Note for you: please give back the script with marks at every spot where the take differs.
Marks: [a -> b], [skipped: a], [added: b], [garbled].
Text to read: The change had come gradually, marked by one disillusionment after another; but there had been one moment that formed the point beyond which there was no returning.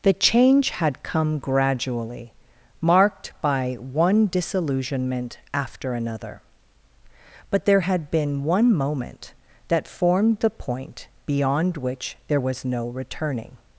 The change had come gradually, marked by one disillusionment after another; but there had been one moment that formed the point beyond which there was no returning.